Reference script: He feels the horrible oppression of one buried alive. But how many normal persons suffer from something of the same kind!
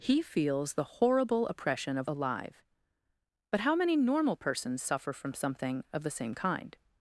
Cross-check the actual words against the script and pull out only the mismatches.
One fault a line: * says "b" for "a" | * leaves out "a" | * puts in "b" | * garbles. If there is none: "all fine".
* leaves out "one buried"